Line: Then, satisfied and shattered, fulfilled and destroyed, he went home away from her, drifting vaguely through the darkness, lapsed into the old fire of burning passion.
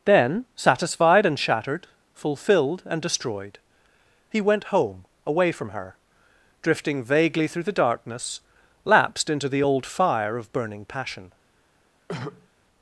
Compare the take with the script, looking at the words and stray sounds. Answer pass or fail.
fail